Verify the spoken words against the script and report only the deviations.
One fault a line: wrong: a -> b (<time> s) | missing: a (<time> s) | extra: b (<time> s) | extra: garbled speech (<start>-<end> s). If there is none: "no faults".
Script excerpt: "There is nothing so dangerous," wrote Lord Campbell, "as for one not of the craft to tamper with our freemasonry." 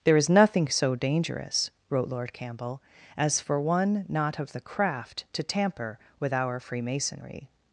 no faults